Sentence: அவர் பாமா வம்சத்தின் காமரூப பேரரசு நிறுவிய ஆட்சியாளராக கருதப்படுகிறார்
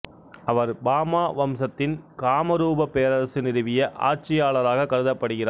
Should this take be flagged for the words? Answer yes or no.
no